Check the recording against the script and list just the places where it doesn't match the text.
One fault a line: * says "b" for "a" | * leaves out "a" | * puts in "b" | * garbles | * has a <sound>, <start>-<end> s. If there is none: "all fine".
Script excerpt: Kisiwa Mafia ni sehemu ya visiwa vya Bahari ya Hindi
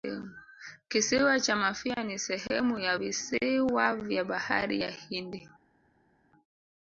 * puts in "cha"